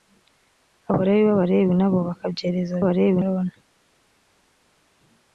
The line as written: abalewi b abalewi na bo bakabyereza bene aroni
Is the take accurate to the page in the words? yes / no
no